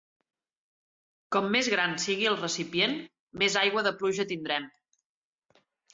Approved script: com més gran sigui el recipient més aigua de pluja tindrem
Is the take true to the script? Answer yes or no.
yes